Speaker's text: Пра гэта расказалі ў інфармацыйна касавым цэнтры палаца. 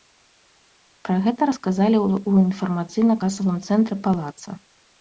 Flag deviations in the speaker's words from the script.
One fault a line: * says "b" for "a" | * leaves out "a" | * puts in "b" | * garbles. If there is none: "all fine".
all fine